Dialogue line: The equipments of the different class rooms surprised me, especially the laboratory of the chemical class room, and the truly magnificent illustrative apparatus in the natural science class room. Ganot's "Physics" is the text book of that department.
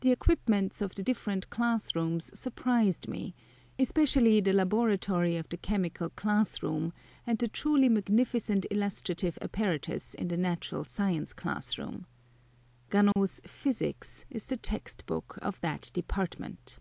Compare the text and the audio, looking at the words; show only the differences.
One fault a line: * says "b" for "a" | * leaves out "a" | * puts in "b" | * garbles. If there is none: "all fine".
all fine